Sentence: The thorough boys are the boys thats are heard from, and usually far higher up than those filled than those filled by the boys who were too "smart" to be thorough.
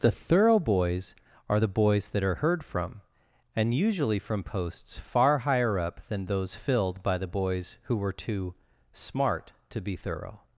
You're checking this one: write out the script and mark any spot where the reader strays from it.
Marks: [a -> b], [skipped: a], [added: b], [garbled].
The thorough boys are the boys [thats -> that] are heard from, and usually [added: from posts] far higher up than those filled [skipped: than those filled] by the boys who were too "smart" to be thorough.